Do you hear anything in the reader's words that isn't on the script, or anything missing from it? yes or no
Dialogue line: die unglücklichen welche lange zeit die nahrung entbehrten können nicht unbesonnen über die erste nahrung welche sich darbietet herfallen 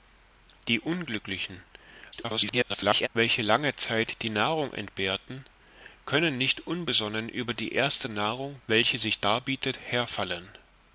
yes